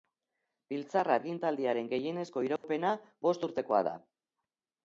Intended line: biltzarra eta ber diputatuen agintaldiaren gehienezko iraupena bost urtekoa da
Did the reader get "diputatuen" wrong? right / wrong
wrong